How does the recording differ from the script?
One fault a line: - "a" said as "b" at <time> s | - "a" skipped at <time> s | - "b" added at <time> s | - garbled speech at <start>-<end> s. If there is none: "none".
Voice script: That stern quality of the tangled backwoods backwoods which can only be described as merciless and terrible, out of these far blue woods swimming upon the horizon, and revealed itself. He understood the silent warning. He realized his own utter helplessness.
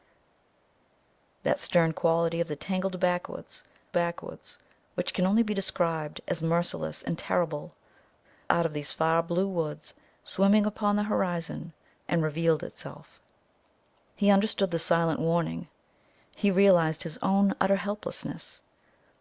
none